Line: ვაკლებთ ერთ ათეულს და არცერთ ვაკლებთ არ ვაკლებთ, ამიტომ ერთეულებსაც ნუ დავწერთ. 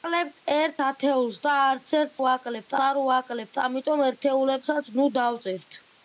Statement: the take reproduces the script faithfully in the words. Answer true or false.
true